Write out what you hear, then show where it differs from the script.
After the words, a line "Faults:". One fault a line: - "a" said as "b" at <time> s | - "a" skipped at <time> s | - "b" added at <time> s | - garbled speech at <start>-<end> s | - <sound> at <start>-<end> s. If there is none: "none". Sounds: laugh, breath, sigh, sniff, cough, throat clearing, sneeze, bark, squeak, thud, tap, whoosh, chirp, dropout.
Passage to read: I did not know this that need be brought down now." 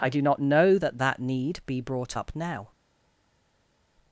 I do not know that that need be brought up now."
Faults:
- "did" said as "do" at 0.1 s
- "this" said as "that" at 0.8 s
- "down" said as "up" at 2.2 s